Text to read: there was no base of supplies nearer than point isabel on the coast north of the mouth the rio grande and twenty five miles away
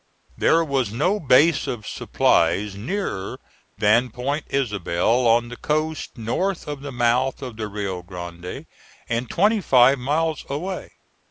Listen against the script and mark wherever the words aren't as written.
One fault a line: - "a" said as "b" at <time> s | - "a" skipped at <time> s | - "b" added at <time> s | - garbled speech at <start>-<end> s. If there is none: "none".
- "of" added at 7.4 s